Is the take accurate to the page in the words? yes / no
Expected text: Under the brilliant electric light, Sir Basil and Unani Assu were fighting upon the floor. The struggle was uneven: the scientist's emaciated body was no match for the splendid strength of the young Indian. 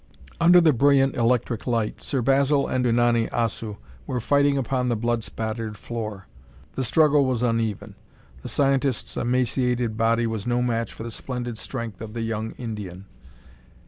no